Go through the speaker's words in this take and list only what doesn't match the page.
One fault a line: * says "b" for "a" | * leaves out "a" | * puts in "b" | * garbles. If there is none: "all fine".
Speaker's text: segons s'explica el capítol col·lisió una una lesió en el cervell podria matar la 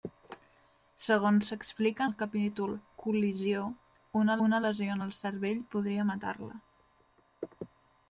all fine